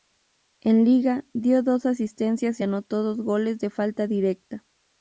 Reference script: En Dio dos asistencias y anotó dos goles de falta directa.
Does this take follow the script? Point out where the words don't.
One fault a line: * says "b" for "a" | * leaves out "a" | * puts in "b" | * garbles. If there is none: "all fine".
* puts in "Liga"